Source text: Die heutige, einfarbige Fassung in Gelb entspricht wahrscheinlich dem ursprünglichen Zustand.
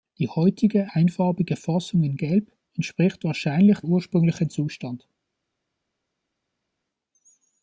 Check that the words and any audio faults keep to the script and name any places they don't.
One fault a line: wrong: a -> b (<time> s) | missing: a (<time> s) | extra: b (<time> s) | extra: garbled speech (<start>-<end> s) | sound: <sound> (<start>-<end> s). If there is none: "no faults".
missing: dem (3.8 s)